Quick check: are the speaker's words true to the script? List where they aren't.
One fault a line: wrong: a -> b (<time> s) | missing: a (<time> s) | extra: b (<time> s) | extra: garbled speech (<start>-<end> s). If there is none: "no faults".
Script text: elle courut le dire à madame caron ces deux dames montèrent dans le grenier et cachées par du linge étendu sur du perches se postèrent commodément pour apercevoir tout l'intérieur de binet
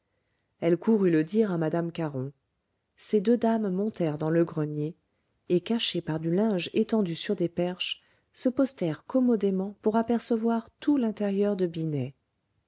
wrong: du -> des (7.3 s)